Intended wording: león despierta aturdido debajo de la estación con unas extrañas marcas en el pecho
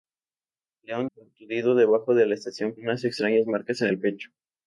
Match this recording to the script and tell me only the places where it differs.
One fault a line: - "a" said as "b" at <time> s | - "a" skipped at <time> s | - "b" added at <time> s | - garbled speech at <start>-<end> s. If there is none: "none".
- "despierta" skipped at 1.1 s
- "con" skipped at 2.7 s